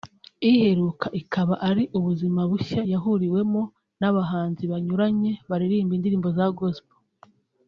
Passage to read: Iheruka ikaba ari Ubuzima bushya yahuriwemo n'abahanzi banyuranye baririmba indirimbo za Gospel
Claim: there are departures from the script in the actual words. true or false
false